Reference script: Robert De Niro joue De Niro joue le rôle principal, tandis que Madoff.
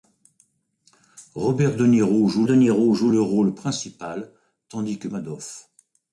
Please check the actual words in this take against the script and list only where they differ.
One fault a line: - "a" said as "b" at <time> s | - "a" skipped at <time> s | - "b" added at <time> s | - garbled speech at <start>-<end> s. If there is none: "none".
none